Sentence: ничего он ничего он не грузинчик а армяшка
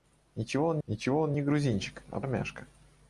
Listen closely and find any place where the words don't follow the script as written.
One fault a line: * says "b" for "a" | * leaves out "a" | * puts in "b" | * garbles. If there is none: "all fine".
all fine